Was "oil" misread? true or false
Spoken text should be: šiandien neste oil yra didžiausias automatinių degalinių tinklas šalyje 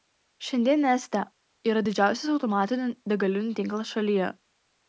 true